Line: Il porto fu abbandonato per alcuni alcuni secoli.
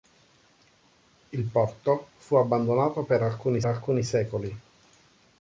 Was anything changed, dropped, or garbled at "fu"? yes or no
no